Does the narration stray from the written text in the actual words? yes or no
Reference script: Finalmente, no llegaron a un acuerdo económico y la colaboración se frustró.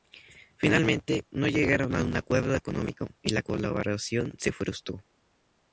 no